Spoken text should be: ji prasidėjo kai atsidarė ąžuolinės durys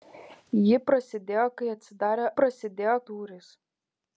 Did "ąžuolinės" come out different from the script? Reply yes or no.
yes